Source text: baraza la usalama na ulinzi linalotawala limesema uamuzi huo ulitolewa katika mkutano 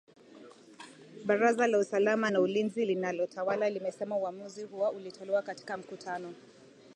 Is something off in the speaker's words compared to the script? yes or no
no